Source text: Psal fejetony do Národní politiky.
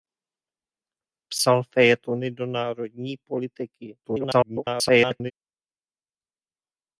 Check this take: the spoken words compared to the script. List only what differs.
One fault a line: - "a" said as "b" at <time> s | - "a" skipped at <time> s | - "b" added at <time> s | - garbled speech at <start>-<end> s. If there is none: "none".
- garbled speech at 4.0-5.3 s